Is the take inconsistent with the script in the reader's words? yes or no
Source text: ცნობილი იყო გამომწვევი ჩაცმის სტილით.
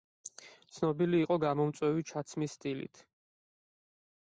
no